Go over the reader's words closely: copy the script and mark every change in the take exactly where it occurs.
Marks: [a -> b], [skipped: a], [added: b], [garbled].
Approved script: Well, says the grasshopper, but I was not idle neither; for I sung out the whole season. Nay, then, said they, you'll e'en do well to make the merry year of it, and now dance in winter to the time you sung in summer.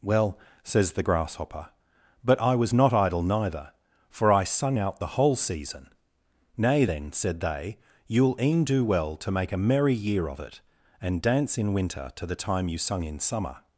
Well, says the grasshopper, but I was not idle neither; for I sung out the whole season. Nay, then, said they, you'll e'en do well to make [the -> a] merry year of it, and [skipped: now] dance in winter to the time you sung in summer.